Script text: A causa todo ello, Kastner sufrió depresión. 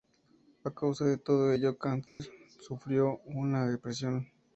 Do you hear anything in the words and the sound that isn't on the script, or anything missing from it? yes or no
yes